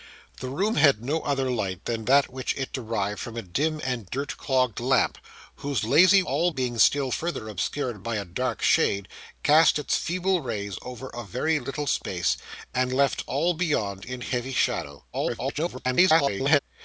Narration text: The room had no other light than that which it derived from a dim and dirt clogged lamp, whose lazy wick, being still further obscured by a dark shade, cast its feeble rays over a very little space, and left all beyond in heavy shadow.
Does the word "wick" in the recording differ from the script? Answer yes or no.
yes